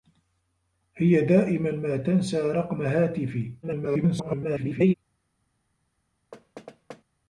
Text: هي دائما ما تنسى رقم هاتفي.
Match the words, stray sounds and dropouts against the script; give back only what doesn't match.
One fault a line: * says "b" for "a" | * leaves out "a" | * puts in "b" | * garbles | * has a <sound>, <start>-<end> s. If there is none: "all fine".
* garbles
* has a thud, 6.3-7.0 s